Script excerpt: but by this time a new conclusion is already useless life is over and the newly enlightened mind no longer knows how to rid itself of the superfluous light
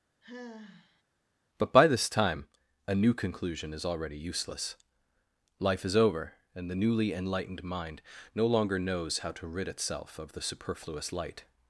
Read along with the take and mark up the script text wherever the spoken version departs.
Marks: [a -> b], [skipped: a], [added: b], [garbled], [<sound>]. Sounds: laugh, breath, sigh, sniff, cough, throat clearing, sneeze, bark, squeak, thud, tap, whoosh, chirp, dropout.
[sigh] but by this time a new conclusion is already useless life is over and the newly enlightened mind no longer knows how to rid itself of the superfluous light